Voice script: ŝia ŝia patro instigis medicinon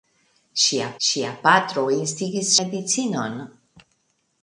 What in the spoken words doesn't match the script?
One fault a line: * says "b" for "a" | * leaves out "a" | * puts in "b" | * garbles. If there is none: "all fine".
all fine